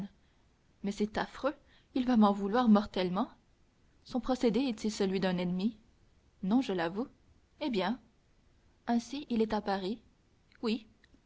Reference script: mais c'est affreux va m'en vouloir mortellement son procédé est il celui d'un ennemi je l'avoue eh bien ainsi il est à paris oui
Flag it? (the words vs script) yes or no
yes